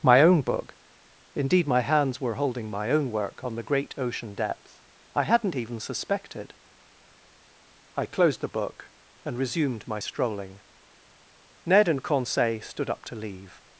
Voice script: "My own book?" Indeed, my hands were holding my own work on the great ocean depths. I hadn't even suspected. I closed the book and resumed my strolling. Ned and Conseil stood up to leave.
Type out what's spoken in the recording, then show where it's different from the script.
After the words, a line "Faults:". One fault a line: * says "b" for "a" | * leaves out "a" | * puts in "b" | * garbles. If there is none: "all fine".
"My own book?" Indeed, my hands were holding my own work on the great ocean depth. I hadn't even suspected. I closed the book and resumed my strolling. Ned and Conseil stood up to leave.
Faults:
* says "depth" for "depths"